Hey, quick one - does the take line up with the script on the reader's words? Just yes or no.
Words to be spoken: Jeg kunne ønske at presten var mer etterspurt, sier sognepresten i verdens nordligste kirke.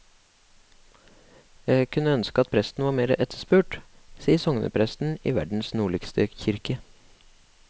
yes